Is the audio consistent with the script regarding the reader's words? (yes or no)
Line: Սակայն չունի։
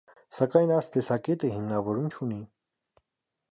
no